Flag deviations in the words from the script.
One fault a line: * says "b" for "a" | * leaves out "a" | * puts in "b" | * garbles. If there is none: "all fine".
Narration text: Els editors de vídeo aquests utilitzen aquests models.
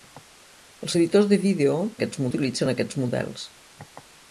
all fine